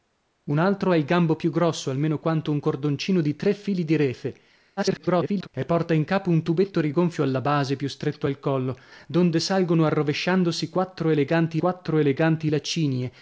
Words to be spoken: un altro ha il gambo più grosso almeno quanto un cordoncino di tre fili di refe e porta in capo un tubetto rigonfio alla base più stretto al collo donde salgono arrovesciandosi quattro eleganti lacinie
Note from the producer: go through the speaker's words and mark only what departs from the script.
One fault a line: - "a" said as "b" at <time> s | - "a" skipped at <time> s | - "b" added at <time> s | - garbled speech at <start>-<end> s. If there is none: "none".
- garbled speech at 4.8-5.5 s
- "quattro eleganti" added at 11.6 s